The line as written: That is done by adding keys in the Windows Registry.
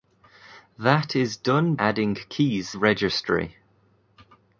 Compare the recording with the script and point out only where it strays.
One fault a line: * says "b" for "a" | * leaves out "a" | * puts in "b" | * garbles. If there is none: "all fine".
* leaves out "by"
* leaves out "in the Windows"